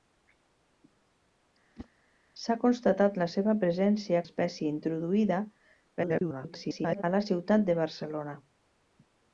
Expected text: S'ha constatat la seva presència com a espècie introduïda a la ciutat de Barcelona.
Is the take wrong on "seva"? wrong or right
right